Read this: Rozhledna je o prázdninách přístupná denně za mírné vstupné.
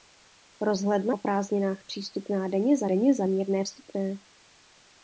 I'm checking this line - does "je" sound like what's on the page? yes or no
no